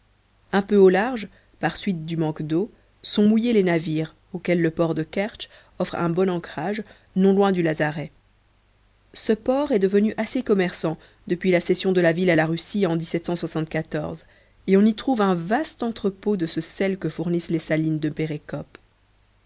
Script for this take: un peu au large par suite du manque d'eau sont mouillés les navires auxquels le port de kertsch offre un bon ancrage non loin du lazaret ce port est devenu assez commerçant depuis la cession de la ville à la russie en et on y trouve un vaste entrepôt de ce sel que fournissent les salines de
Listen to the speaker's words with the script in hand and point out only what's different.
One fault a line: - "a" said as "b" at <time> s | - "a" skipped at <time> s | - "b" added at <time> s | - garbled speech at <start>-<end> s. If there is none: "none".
none